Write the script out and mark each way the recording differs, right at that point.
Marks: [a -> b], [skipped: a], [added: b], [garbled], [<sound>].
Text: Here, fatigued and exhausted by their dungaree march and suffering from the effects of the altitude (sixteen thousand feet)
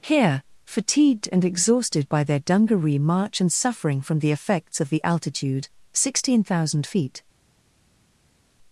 Here, fatigued and exhausted by their dungaree march and suffering from the effects of the altitude (sixteen thousand feet)